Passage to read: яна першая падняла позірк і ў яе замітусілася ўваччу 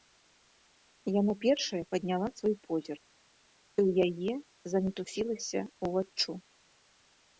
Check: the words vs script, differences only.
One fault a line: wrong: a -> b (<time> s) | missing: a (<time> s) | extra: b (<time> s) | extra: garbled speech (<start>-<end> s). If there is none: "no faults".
extra: свой (2.4 s)